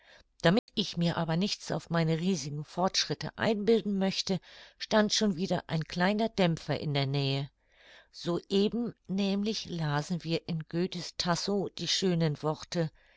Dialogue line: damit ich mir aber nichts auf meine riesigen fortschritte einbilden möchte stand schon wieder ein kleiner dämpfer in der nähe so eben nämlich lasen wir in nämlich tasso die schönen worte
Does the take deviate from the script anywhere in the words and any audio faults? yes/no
yes